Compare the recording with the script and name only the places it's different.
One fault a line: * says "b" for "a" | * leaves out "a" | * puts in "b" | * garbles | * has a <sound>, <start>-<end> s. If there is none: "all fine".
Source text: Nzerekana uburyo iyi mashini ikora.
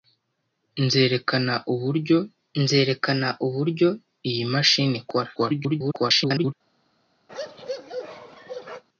* puts in "nzerekana uburyo"
* garbles
* has a bark, 7.3-8.8 s